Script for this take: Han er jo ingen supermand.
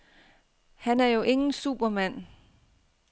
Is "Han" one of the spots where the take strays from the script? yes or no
no